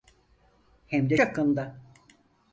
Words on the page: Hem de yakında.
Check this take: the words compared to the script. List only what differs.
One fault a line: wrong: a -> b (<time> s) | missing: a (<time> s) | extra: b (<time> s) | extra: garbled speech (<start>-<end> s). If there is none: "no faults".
no faults